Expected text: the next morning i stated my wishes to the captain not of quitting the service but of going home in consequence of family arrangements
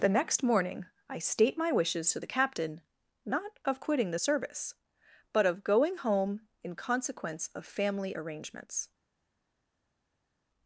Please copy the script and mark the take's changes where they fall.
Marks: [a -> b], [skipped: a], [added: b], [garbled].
the next morning i [stated -> state] my wishes to the captain not of quitting the service but of going home in consequence of family arrangements